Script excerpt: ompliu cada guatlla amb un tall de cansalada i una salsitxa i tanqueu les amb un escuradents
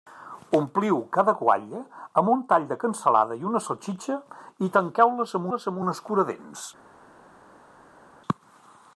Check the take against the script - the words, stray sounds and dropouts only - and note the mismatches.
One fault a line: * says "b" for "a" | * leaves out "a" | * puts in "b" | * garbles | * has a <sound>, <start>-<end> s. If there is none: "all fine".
* puts in "les amb"